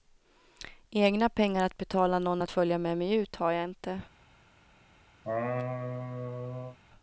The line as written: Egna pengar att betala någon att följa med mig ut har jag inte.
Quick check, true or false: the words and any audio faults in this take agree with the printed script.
false